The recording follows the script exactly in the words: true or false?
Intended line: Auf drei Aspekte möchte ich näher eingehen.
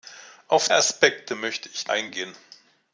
false